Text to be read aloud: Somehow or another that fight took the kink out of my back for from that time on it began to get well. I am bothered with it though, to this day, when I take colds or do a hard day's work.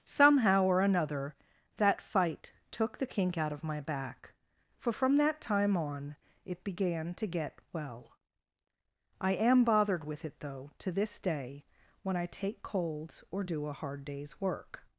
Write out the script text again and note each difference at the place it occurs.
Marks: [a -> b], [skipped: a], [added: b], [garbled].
Somehow or another that fight took the kink out of my back for from that time on it began to get well. I am bothered with it though, to this day, when I take colds or do a hard day's work.